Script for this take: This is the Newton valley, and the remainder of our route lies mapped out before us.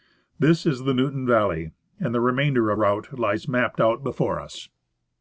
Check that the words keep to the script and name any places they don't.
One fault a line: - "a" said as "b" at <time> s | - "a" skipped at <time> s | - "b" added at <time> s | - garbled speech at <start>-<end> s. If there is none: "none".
- "our" skipped at 2.8 s